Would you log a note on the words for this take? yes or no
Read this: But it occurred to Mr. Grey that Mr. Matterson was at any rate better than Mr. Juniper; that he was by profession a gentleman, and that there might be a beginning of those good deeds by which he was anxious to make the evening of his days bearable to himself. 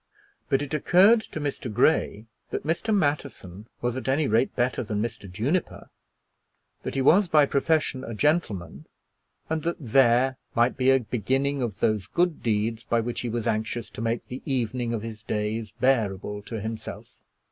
no